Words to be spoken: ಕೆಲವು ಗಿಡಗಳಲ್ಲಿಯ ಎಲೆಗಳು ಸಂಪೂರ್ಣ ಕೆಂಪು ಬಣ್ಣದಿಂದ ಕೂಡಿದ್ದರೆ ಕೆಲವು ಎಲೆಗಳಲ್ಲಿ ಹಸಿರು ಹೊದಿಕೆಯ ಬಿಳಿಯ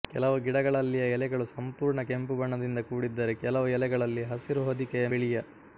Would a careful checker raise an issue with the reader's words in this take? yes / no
no